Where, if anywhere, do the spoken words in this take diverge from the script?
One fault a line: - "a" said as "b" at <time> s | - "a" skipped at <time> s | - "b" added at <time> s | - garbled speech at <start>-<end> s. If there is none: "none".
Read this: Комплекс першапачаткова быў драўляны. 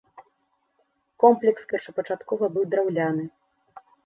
none